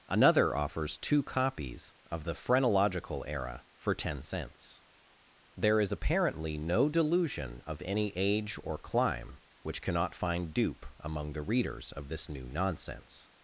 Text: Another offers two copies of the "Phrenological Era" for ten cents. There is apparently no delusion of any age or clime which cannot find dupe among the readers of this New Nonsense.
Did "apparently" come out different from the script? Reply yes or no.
no